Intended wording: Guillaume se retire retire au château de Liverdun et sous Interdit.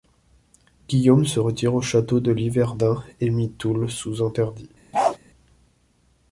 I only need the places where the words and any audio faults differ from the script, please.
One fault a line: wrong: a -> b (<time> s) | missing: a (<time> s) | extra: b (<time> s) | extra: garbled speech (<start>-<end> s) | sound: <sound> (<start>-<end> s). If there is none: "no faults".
missing: retire (1.7 s)
extra: mit Toul (3.3 s)
sound: bark (4.9-5.2 s)